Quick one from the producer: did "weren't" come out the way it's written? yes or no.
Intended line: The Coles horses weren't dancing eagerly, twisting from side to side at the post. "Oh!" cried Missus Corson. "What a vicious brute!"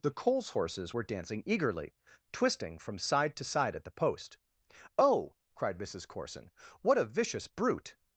no